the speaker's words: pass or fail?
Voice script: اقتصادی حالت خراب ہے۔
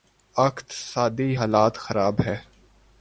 pass